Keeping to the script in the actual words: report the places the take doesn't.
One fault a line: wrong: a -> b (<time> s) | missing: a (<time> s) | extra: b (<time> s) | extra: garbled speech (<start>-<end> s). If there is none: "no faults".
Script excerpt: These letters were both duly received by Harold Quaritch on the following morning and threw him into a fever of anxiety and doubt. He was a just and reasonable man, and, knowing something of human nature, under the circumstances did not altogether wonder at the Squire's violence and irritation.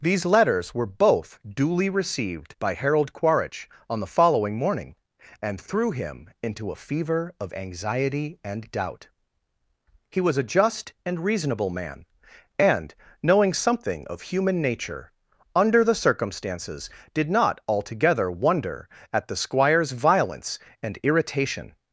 no faults